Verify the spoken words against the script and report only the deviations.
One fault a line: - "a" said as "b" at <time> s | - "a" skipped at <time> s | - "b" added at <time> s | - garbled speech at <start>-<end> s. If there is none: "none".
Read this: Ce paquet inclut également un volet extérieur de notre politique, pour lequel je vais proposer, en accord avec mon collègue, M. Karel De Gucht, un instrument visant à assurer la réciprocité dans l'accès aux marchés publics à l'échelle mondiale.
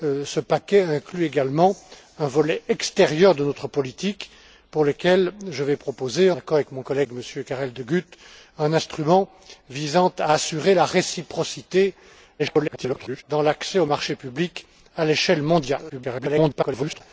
- "en" skipped at 6.3 s
- garbled speech at 12.4-13.2 s
- garbled speech at 15.9-17.0 s